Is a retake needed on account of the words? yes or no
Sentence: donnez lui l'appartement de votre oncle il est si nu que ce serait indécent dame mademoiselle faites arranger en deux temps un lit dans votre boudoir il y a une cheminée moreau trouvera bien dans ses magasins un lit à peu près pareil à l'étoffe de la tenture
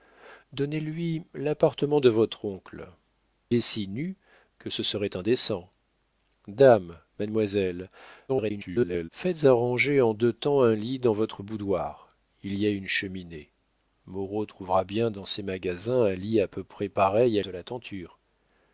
yes